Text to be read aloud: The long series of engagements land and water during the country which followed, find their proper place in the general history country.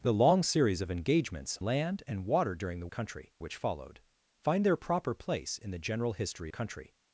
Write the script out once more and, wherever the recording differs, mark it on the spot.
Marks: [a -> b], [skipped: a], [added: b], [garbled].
The long series of engagements land and water during the country which followed, find their proper place in the general history country.